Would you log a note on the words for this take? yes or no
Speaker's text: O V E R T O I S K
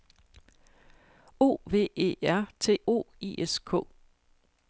no